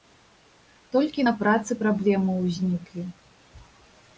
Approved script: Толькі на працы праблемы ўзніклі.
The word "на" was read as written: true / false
true